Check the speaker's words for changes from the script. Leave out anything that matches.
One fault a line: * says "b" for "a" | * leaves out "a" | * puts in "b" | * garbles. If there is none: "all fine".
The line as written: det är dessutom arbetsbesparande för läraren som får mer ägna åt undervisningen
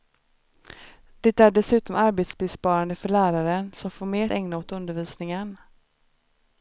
all fine